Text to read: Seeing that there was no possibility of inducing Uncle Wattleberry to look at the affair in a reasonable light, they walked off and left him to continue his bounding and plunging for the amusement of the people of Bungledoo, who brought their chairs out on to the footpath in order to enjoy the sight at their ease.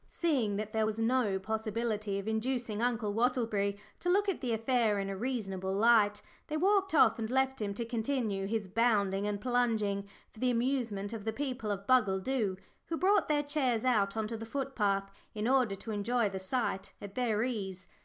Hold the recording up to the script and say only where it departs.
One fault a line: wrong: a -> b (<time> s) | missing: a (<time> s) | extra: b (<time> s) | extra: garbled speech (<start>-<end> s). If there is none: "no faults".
no faults